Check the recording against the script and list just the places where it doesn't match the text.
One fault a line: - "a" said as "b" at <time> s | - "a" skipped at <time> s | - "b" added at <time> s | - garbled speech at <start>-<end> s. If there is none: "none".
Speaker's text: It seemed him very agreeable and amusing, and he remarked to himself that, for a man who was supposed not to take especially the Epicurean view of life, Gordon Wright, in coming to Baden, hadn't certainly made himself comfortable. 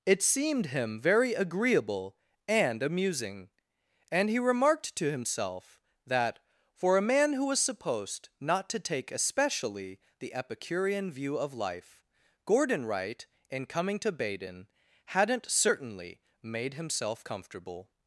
none